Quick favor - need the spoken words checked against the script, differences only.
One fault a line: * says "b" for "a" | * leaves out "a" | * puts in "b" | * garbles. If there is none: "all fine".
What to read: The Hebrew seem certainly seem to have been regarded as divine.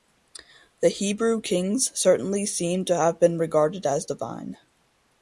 * says "kings" for "seem"